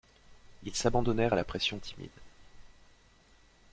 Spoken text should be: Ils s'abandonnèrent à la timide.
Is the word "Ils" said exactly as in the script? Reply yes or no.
yes